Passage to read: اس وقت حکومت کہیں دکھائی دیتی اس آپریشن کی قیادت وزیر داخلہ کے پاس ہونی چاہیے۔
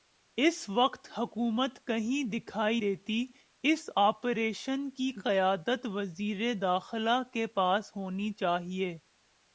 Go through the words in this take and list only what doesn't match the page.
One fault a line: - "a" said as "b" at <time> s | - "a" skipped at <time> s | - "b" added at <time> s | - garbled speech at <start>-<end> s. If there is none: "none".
none